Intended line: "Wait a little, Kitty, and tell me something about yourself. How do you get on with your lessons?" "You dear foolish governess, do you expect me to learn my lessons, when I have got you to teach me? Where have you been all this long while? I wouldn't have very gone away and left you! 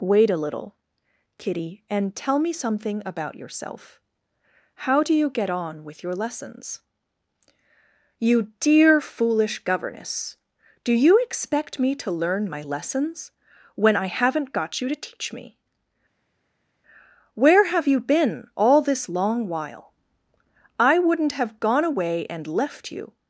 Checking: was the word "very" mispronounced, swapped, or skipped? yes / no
yes